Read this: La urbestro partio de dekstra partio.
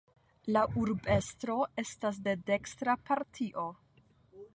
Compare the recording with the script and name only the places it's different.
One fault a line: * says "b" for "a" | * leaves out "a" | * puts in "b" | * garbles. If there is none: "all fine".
* says "estas" for "partio"